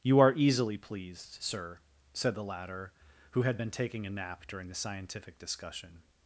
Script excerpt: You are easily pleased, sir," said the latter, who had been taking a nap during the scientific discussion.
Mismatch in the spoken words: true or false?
false